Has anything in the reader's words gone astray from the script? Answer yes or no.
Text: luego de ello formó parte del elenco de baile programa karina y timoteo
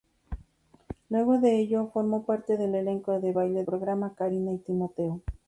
no